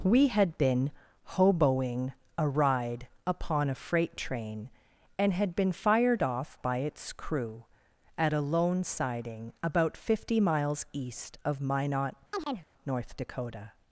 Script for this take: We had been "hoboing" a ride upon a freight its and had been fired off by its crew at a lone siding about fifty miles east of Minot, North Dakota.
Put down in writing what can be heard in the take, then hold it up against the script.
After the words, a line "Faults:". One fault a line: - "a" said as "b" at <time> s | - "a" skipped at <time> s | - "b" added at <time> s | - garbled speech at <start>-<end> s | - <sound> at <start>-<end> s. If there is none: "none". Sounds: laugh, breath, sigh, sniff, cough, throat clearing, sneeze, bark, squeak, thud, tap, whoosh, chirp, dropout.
We had been "hoboing" a ride upon a freight train and had been fired off by its crew at a lone siding about fifty miles east of Minot, North Dakota.
Faults:
- "its" said as "train" at 4.2 s
- chirp at 12.3-12.7 s